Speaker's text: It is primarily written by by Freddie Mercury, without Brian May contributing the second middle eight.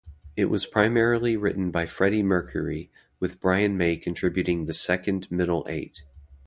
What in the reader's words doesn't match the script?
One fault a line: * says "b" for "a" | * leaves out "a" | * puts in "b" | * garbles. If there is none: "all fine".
* says "was" for "is"
* leaves out "by"
* says "with" for "without"